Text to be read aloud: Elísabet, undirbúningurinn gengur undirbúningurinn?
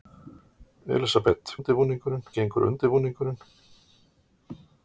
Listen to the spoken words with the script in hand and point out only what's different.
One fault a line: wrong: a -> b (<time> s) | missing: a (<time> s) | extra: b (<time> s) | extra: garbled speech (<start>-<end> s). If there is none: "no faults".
no faults